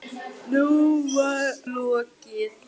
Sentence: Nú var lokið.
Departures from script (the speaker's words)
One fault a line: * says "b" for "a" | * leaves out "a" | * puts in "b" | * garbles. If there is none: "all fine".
all fine